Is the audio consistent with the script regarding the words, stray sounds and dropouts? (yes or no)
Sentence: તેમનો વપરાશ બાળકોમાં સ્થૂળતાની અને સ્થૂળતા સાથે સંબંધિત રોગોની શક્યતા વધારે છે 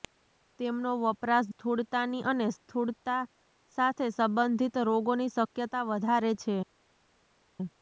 no